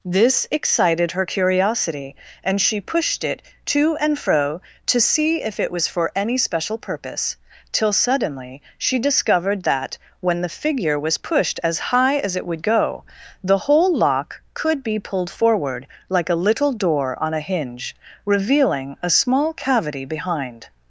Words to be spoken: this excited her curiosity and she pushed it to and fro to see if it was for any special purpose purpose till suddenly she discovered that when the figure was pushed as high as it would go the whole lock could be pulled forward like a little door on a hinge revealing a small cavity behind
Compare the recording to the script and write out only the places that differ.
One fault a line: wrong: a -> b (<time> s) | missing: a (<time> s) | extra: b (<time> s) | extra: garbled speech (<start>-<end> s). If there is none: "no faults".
missing: purpose (7.3 s)